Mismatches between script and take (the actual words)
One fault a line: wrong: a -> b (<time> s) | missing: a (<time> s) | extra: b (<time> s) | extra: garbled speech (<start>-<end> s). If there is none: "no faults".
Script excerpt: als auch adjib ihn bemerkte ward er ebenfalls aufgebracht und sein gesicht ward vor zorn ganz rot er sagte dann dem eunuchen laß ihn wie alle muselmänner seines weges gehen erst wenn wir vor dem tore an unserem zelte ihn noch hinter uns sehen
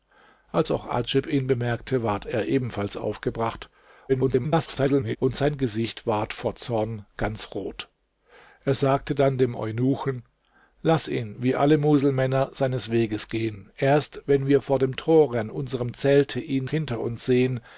extra: garbled speech (4.1-5.2 s)
missing: noch (16.6 s)